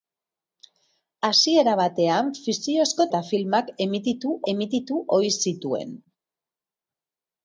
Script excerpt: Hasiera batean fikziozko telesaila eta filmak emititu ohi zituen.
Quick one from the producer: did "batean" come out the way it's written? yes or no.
yes